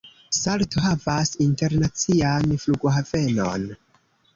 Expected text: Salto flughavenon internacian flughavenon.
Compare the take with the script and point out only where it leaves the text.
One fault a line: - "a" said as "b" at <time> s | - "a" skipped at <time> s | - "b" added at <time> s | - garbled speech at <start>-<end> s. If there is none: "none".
- "flughavenon" said as "havas" at 0.8 s